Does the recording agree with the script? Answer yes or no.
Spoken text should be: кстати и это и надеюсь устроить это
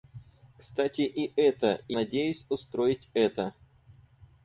yes